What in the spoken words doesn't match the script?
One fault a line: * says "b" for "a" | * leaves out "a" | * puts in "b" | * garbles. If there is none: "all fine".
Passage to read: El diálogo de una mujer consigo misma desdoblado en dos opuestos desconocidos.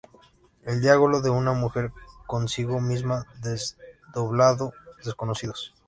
* leaves out "en dos opuestos"